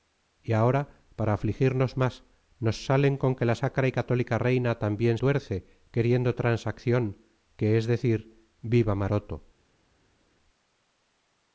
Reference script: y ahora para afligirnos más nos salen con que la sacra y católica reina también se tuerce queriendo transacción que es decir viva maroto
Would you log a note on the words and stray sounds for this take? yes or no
yes